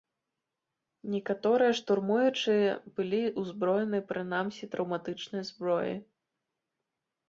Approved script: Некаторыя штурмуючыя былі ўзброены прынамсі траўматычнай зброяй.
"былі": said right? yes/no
yes